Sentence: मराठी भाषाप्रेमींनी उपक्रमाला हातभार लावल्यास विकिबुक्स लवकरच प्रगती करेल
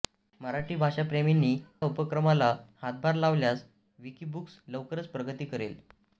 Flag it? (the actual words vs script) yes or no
no